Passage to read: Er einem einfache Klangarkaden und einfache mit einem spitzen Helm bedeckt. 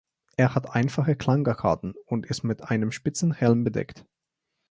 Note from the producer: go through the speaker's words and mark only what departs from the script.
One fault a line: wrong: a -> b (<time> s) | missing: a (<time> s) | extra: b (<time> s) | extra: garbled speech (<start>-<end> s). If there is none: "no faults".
wrong: einem -> hat (0.6 s)
wrong: einfache -> ist (2.2 s)